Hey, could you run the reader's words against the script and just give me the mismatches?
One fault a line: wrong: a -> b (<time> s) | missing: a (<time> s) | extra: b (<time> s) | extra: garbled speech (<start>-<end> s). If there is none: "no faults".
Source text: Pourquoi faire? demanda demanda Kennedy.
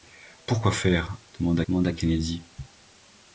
no faults